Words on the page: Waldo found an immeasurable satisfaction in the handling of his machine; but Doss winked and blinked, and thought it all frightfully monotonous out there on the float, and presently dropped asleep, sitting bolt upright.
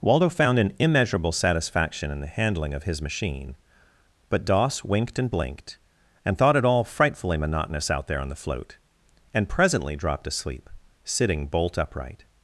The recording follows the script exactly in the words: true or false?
true